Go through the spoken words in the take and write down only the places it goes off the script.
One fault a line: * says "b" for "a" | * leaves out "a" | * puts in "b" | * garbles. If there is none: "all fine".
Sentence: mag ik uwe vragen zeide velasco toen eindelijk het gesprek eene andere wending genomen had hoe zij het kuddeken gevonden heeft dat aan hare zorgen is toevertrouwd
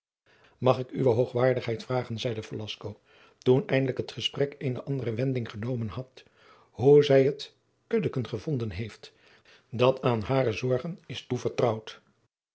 * puts in "hoogwaardigheid"